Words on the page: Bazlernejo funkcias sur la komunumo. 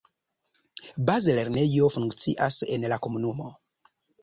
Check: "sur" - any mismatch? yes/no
yes